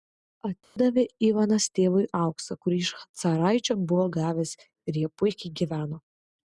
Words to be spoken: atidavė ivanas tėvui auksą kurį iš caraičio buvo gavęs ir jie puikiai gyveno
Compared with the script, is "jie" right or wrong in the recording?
right